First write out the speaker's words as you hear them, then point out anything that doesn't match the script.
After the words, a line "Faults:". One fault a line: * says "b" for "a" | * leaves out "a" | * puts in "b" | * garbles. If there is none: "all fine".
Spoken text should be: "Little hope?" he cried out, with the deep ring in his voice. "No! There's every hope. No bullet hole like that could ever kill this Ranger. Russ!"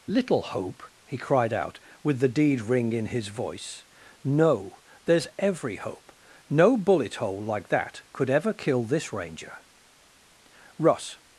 "Little hope?" he cried out, with the deed ring in his voice. "No! There's every hope. No bullet hole like that could ever kill this Ranger. Russ!"
Faults:
* says "deed" for "deep"